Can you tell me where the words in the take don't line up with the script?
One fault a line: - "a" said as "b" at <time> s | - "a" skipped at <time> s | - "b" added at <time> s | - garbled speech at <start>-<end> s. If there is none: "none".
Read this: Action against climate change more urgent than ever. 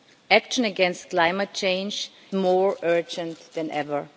none